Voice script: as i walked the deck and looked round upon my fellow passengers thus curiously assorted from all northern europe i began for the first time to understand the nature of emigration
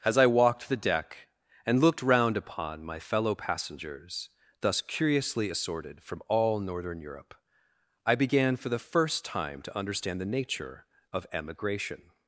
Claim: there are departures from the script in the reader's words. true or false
false